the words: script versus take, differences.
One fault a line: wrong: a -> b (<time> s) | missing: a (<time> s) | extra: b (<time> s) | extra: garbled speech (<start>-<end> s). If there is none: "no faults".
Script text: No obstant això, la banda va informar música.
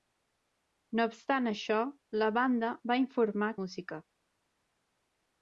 no faults